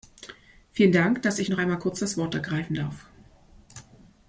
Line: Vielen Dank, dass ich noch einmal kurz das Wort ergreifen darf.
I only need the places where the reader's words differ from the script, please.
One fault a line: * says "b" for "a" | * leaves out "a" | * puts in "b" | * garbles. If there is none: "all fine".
all fine